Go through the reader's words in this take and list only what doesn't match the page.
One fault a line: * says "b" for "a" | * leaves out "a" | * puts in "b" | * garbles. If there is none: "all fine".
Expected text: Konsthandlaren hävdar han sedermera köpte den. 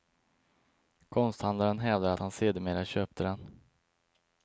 all fine